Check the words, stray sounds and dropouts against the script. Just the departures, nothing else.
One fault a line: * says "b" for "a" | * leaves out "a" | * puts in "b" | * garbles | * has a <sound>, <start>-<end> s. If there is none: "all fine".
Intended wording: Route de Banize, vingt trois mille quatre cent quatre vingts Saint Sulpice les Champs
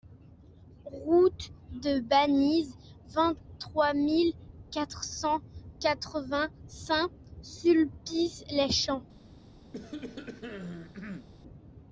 * has a cough, 9.7-11.3 s